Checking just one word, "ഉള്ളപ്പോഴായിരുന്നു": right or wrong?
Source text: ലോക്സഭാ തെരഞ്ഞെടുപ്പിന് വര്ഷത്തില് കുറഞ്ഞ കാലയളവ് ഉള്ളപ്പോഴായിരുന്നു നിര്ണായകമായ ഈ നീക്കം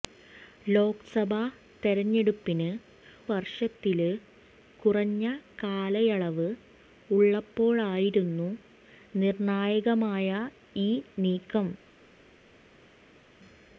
right